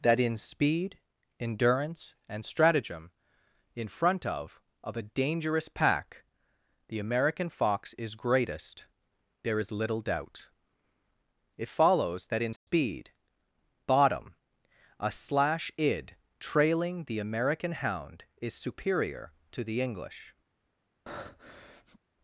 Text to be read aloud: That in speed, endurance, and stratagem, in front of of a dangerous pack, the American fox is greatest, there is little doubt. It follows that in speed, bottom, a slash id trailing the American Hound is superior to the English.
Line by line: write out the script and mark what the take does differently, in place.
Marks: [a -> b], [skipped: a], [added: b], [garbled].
That in speed, endurance, and stratagem, in front of of a dangerous pack, the American fox is greatest, there is little doubt. It follows that in speed, bottom, a slash id trailing the American Hound is superior to the English.